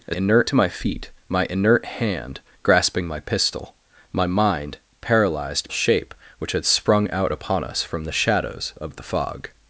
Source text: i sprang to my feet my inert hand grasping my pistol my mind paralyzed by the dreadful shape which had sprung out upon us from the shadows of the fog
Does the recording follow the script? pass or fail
fail